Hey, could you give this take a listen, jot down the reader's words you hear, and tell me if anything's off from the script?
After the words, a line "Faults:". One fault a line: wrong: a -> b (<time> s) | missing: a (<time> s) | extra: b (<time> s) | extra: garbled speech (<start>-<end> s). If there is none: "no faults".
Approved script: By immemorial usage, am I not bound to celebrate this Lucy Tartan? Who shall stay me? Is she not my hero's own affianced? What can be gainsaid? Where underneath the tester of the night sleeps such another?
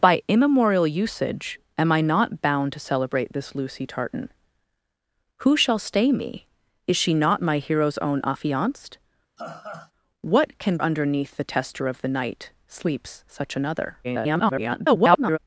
By immemorial usage, am I not bound to celebrate this Lucy Tartan? Who shall stay me? Is she not my hero's own affianced? What can underneath the tester of the night sleeps such another? [garbled]
Faults:
missing: be gainsaid Where (10.8 s)
extra: garbled speech (14.0-15.4 s)